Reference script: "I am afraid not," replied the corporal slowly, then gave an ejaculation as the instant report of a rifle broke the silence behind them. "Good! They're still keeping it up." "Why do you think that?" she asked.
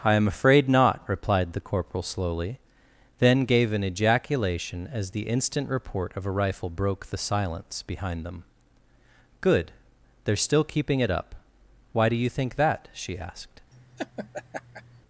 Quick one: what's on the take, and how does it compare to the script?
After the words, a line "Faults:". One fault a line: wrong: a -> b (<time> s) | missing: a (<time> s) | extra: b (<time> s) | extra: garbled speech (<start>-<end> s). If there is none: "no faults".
"I am afraid not," replied the corporal slowly, then gave an ejaculation as the instant report of a rifle broke the silence behind them. "Good! They're still keeping it up." "Why do you think that?" she asked.
Faults:
no faults